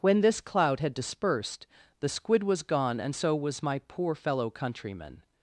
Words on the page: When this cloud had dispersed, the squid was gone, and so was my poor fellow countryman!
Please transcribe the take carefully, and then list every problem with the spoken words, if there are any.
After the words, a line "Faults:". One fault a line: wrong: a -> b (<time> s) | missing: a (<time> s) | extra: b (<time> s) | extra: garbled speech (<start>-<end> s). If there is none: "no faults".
When this cloud had dispersed, the squid was gone, and so was my poor fellow countryman!
Faults:
no faults